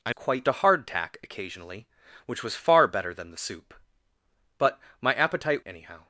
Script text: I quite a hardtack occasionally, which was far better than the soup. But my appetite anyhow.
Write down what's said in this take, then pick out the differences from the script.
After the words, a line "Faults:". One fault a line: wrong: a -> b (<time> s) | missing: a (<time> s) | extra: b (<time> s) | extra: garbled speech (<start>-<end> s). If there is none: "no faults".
I quite a hardtack occasionally, which was far better than the soup. But my appetite anyhow.
Faults:
no faults